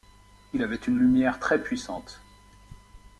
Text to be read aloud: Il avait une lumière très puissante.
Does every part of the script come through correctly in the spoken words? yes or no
yes